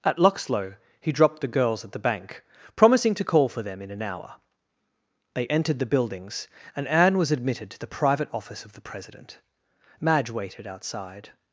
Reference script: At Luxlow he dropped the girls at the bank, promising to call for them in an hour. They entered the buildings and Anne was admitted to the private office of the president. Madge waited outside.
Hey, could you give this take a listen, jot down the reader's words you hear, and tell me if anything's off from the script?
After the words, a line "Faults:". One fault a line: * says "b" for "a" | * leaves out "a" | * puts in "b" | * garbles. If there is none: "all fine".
At Luxlow he dropped the girls at the bank, promising to call for them in an hour. They entered the buildings and Anne was admitted to the private office of the president. Madge waited outside.
Faults:
all fine